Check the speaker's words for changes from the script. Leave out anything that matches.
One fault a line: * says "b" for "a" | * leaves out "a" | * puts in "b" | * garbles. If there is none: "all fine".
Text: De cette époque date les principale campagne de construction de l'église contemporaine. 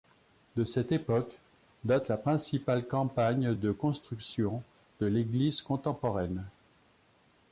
* says "la" for "les"